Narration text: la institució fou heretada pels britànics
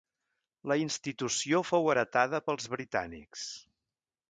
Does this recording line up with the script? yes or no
yes